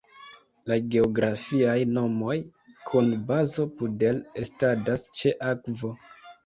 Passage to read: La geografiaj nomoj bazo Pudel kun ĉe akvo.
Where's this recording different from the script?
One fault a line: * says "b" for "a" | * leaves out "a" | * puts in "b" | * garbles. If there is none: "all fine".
* puts in "kun"
* says "estadas" for "kun"